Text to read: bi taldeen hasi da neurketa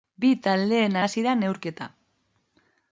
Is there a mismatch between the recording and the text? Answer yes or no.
no